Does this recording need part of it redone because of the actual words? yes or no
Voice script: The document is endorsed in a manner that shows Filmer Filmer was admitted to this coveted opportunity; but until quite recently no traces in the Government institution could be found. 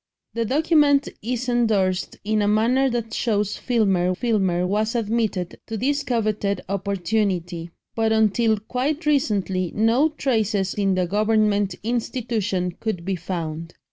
no